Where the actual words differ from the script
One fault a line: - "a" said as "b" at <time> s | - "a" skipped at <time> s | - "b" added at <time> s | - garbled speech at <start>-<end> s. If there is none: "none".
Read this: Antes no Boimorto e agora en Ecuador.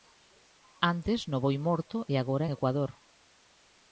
none